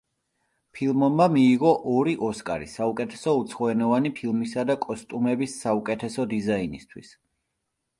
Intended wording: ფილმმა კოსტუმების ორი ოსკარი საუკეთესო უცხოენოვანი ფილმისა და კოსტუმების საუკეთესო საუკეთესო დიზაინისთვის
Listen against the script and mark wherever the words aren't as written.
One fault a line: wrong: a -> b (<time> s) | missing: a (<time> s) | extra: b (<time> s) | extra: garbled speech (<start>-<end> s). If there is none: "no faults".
wrong: კოსტუმების -> მიიღო (1.3 s)
missing: საუკეთესო (6.3 s)